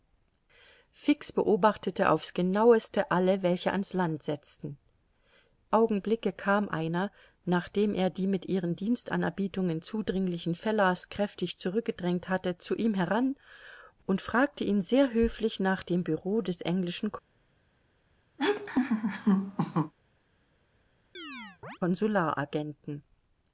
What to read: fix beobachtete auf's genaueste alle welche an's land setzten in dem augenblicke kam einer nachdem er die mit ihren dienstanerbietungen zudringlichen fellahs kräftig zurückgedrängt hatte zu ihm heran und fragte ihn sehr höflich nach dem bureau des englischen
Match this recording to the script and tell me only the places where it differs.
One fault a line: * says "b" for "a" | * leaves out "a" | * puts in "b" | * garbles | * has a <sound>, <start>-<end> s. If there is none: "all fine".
* leaves out "in dem"
* has a laugh, 18.4-19.9 s
* has a chirp, 21.1-21.8 s